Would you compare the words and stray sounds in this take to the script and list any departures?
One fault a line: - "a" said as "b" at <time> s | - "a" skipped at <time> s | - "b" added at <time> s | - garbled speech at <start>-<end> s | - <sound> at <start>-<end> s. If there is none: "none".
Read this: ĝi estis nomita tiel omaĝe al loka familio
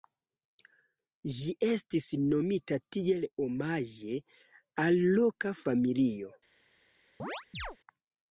- chirp at 7.2-7.8 s